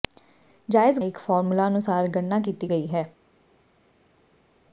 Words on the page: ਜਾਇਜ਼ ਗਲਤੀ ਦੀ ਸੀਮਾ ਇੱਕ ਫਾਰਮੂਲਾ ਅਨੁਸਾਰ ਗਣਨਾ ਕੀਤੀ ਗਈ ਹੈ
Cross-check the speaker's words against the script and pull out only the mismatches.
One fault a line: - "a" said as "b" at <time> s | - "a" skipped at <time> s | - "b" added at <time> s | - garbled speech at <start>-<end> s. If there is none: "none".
- "ਗਲਤੀ ਦੀ ਸੀਮਾ" skipped at 1.0 s